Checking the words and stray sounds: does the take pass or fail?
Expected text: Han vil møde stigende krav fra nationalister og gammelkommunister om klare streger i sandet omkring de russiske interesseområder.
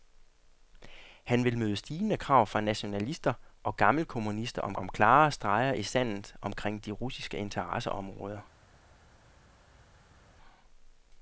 fail